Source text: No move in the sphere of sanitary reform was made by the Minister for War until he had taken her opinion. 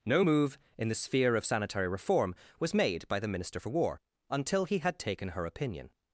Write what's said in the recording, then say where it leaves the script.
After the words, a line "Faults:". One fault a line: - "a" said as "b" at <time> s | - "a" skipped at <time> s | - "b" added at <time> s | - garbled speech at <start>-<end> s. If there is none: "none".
No move in the sphere of sanitary reform was made by the Minister for War until he had taken her opinion.
Faults:
none